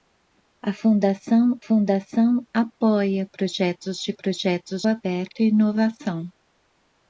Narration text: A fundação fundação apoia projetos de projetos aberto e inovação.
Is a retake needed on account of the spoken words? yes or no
no